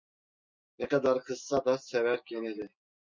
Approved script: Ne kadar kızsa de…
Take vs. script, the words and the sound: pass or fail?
fail